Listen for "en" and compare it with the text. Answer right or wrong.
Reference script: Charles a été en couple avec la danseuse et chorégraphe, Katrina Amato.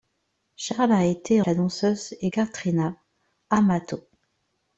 wrong